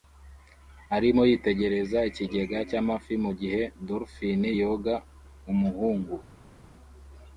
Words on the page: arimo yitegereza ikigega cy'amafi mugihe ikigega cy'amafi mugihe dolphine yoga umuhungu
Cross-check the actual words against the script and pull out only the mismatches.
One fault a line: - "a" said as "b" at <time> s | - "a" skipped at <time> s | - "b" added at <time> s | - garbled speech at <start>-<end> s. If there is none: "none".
- "ikigega cy'amafi mugihe" skipped at 3.6 s